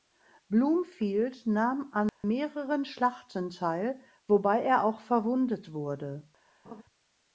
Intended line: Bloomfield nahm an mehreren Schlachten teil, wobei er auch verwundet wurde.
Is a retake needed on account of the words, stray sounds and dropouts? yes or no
yes